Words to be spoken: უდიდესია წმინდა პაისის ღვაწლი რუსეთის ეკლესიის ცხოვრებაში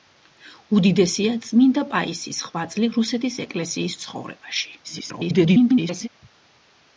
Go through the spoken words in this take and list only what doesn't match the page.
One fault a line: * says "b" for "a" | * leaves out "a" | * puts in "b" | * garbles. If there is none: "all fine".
* garbles